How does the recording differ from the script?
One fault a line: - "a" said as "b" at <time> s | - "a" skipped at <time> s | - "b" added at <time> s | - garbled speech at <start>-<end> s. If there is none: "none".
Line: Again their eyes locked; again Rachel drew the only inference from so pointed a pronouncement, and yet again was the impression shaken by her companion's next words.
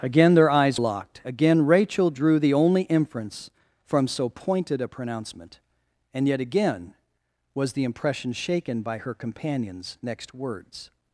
none